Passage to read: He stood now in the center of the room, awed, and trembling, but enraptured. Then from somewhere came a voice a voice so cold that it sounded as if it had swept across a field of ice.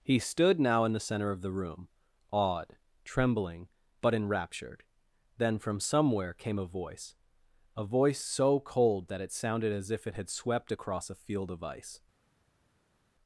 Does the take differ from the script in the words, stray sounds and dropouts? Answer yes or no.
yes